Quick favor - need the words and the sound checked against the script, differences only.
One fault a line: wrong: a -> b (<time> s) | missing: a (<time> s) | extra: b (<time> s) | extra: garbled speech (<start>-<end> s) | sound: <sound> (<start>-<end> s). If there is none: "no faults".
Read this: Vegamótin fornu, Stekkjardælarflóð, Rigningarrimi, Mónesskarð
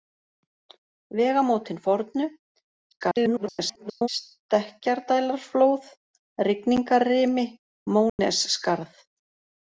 extra: garbled speech (2.9-4.1 s)
sound: dropout (8.1-8.2 s)